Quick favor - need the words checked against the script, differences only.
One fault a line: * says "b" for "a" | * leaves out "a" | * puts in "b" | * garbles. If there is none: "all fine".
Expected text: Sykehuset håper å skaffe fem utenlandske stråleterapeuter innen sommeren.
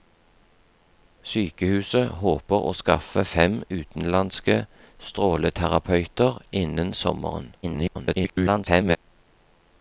* garbles